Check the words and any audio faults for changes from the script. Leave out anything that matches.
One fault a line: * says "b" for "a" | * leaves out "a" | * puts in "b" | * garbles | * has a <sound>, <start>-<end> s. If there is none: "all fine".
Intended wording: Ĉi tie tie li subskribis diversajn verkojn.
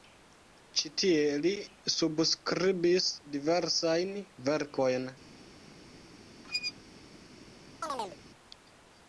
* leaves out "tie"
* has a squeak, 6.4-6.7 s
* has a chirp, 7.8-8.2 s